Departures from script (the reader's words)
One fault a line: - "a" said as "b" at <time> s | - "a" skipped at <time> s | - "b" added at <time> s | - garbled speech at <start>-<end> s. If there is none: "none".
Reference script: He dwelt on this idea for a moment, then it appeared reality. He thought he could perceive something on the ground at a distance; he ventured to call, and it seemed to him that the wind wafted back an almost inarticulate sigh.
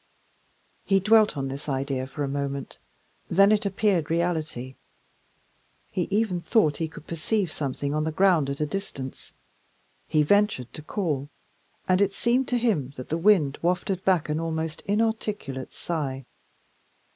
- "even" added at 6.1 s